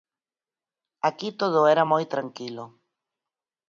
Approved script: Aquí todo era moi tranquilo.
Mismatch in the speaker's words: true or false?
false